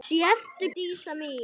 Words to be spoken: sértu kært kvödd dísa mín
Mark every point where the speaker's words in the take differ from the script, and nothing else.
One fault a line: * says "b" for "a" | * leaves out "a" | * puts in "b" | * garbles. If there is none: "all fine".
* leaves out "kært kvödd"